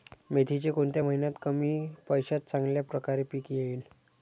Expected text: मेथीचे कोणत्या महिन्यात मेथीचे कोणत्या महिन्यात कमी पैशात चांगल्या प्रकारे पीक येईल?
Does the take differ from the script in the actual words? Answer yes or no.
yes